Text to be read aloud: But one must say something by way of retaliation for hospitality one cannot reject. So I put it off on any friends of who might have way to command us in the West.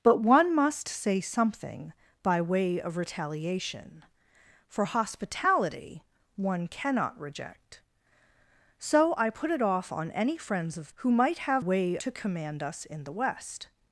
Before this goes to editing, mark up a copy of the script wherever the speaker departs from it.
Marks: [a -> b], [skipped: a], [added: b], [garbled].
But one must say something by way of retaliation for hospitality one cannot reject. So I put it off on any friends of who might have way to command us in the West.